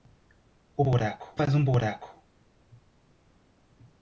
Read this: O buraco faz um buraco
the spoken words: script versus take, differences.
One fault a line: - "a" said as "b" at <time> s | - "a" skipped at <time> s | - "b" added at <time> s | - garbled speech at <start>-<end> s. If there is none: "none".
none